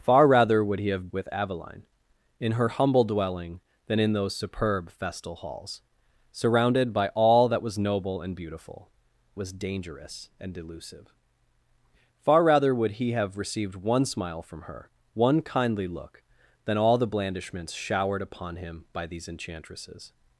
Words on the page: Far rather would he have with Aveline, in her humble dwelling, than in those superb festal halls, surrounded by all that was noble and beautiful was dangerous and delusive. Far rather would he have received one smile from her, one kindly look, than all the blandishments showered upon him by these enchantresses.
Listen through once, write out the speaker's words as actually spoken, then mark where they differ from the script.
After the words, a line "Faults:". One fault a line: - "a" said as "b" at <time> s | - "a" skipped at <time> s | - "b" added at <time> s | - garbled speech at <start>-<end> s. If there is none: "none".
Far rather would he have with Aveline, in her humble dwelling, than in those superb festal halls, surrounded by all that was noble and beautiful was dangerous and delusive. Far rather would he have received one smile from her, one kindly look, than all the blandishments showered upon him by these enchantresses.
Faults:
none